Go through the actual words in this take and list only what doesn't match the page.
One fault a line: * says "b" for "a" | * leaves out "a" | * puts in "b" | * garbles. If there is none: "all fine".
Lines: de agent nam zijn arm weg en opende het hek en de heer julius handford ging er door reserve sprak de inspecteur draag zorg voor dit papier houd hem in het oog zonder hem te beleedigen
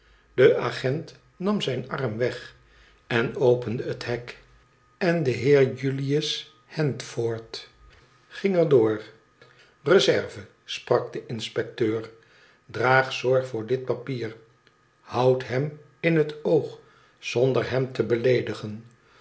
all fine